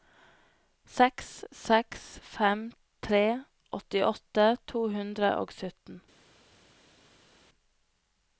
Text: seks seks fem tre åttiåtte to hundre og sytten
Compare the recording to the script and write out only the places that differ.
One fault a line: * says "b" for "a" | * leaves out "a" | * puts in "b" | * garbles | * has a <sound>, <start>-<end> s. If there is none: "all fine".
all fine